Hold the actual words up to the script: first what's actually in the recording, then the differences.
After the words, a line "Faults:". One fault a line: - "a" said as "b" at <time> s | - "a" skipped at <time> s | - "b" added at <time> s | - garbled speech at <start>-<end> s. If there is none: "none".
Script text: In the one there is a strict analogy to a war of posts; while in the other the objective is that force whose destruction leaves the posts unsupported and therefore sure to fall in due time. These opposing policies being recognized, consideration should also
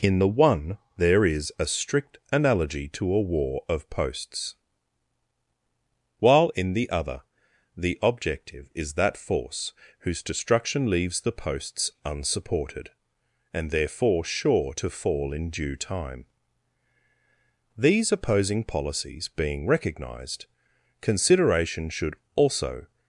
In the one there is a strict analogy to a war of posts; while in the other the objective is that force whose destruction leaves the posts unsupported and therefore sure to fall in due time. These opposing policies being recognized, consideration should also
Faults:
none